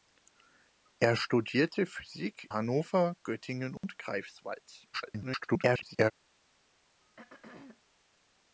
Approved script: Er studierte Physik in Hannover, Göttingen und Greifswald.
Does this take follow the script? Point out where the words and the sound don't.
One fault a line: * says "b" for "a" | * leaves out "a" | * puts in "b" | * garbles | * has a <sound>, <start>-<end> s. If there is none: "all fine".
* leaves out "in"
* has a dropout, 3.8-3.8 s
* garbles
* has a throat clearing, 7.0-7.8 s